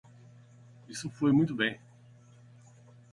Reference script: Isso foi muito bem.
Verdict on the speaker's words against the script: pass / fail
pass